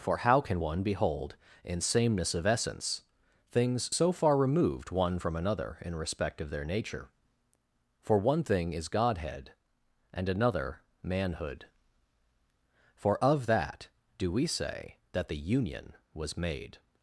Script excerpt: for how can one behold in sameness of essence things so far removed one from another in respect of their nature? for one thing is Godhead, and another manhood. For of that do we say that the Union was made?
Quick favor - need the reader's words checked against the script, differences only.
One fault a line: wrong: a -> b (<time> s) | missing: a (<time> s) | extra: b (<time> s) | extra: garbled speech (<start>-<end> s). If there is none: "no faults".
no faults